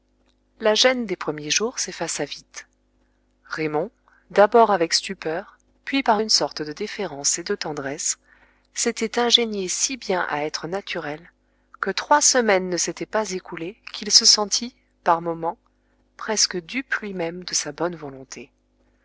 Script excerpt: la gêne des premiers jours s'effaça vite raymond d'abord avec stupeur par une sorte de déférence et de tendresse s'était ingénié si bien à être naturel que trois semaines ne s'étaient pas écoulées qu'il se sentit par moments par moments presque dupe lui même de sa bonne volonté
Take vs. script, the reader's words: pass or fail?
fail